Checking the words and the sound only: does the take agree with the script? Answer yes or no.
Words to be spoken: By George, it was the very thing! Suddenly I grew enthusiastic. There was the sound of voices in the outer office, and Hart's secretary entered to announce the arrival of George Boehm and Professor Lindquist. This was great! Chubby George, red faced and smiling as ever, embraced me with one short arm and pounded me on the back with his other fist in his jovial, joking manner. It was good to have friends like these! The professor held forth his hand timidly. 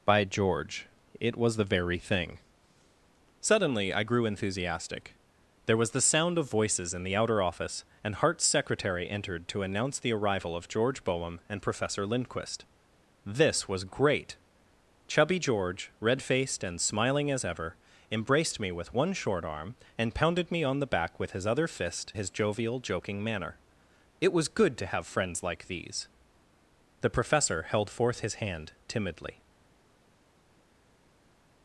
no